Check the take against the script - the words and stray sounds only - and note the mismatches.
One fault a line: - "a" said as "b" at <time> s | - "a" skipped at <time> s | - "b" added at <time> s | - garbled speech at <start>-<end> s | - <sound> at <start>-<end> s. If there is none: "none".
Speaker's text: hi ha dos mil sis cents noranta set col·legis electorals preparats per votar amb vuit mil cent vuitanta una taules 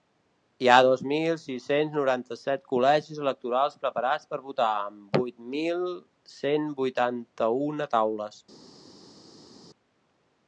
none